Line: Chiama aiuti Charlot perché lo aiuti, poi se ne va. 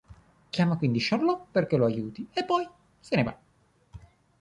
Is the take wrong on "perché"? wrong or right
right